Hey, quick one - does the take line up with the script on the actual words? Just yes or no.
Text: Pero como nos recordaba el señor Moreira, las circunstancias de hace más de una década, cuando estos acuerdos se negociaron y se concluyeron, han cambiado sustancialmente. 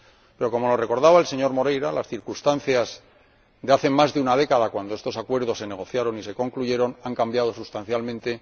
yes